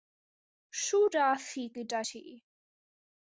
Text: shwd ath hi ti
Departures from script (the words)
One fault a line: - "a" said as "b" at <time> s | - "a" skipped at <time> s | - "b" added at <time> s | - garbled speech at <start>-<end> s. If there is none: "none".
- "gyda" added at 1.8 s